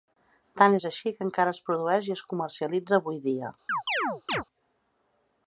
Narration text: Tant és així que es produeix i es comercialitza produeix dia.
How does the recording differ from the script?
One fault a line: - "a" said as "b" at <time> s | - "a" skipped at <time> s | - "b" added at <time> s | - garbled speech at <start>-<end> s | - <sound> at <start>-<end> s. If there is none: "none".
- "encara" added at 1.3 s
- "produeix" said as "avui" at 3.0 s
- chirp at 3.7-4.4 s